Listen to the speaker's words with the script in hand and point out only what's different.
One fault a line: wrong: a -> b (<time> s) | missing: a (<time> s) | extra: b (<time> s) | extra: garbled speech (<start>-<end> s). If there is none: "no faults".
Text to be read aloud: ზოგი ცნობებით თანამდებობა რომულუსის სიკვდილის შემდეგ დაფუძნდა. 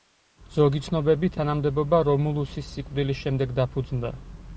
no faults